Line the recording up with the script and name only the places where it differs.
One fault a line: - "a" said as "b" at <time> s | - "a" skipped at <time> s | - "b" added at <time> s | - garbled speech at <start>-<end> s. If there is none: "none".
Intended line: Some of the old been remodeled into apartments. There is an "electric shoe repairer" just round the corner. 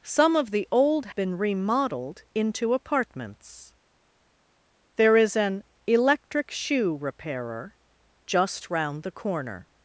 none